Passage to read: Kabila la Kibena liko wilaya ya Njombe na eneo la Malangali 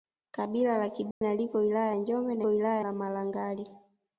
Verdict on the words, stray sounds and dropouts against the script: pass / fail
fail